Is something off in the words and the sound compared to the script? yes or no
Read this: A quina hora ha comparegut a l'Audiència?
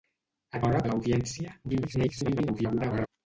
yes